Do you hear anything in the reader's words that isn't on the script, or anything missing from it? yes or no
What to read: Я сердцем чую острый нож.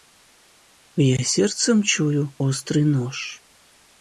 no